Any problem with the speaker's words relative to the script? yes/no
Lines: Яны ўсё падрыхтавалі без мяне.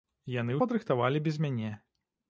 yes